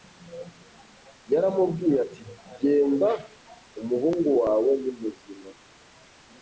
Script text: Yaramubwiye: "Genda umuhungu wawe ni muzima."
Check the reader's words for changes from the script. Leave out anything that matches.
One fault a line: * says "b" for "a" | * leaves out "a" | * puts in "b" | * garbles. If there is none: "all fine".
* puts in "ati"